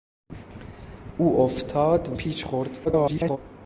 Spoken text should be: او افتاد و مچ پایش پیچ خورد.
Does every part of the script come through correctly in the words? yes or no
no